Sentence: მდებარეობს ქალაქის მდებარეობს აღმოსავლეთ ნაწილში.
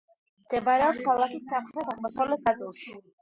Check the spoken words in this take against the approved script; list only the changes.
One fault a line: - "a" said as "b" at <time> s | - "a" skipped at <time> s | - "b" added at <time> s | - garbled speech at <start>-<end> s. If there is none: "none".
- "მდებარეობს" said as "სამხრეთ" at 1.5 s